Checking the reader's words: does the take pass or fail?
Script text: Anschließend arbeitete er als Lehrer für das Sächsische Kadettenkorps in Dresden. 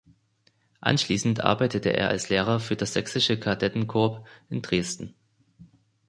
pass